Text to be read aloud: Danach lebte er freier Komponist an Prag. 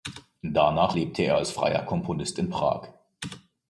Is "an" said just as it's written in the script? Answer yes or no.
no